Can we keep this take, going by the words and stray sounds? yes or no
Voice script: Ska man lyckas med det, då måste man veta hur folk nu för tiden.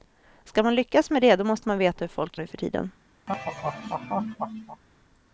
no